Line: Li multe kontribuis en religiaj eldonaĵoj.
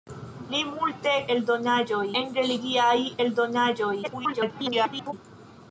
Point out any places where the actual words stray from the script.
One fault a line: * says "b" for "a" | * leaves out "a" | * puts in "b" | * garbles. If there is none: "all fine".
* says "eldonaĵoj" for "kontribuis"
* garbles